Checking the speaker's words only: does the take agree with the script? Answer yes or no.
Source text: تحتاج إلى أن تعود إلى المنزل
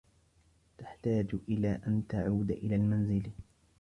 yes